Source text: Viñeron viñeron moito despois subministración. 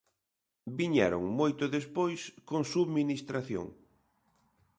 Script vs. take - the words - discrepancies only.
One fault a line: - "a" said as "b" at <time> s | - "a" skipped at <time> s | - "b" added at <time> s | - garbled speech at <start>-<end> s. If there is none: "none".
- "viñeron" skipped at 1.2 s
- "con" added at 2.5 s